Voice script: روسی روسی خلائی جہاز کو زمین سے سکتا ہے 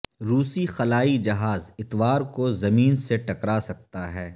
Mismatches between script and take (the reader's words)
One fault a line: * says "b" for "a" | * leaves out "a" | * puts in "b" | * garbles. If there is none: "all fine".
* leaves out "روسی"
* puts in "اتوار"
* puts in "ٹکرا"